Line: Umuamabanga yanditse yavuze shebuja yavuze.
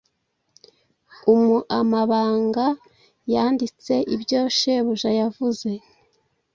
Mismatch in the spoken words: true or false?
true